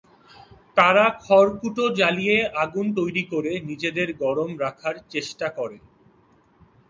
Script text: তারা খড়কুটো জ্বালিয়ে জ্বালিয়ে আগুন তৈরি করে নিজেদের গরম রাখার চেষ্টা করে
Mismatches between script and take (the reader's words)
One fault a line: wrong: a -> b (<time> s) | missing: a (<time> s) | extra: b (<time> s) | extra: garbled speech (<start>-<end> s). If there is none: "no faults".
missing: জ্বালিয়ে (2.4 s)